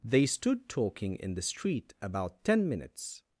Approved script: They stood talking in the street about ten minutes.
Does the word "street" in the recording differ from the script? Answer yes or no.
no